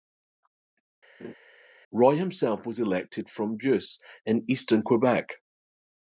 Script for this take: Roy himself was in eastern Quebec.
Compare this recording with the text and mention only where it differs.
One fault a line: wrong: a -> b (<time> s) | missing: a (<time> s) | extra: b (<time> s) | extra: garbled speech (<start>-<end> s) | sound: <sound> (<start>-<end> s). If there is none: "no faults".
sound: laugh (1.2-1.3 s)
extra: elected from Beauce (2.8 s)